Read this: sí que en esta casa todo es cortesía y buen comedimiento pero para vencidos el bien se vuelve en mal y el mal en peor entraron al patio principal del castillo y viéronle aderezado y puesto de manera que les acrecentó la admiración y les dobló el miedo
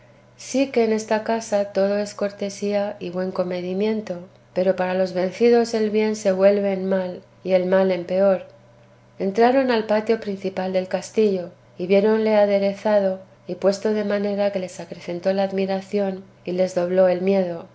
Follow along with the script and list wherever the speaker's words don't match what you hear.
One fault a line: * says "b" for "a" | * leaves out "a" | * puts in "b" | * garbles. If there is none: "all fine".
* puts in "los"